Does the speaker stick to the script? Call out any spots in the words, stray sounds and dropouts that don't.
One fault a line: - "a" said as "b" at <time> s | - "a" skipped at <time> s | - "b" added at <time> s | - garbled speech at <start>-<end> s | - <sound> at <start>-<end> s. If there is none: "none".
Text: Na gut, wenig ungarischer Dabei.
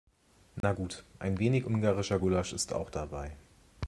- dropout at 0.6-0.6 s
- "ein" added at 1.2 s
- "Gulasch ist auch" added at 2.2 s